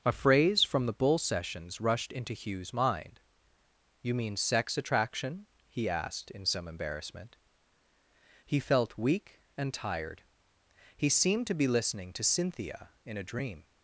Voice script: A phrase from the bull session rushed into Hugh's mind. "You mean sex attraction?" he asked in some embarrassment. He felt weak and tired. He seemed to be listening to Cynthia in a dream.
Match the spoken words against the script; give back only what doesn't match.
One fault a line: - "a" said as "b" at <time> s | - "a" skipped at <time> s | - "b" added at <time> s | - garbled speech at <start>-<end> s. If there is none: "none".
- "session" said as "sessions" at 1.2 s